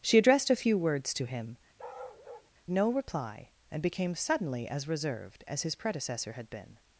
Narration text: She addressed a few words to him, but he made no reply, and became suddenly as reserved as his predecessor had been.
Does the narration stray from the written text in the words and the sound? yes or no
yes